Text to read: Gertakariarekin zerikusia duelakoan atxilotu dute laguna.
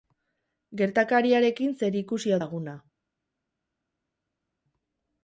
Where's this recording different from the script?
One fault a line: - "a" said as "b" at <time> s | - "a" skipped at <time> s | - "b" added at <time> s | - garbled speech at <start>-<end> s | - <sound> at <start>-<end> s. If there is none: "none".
- "duelakoan atxilotu dute" skipped at 2.4 s